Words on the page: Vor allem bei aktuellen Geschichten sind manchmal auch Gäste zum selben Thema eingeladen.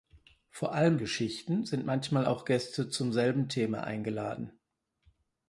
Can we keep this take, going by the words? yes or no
no